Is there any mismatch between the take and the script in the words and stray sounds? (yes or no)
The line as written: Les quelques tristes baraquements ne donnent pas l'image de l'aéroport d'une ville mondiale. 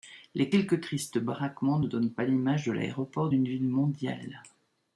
no